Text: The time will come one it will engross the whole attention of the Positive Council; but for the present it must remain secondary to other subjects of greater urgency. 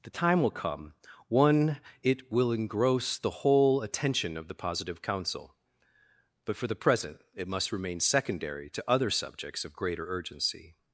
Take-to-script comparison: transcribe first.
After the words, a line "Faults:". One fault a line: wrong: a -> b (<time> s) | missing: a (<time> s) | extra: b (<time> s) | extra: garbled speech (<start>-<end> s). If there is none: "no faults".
The time will come one it will engross the whole attention of the Positive Council; but for the present it must remain secondary to other subjects of greater urgency.
Faults:
no faults